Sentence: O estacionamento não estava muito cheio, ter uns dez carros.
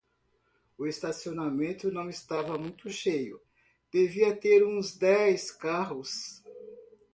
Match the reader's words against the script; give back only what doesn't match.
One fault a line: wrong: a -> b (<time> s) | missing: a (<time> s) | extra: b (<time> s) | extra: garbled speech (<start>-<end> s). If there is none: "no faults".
extra: devia (3.9 s)